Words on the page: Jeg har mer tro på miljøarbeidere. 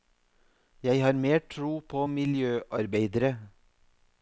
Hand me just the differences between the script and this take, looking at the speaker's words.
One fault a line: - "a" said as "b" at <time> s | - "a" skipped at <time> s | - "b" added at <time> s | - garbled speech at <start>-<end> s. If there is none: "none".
none